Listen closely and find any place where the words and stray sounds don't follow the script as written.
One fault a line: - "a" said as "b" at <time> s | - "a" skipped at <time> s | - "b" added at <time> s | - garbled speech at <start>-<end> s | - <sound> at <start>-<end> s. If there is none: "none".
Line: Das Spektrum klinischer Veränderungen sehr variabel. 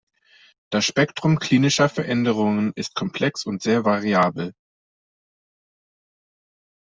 - "ist komplex und" added at 2.7 s